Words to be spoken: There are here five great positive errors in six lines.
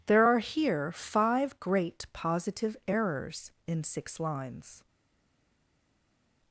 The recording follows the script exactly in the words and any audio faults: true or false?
true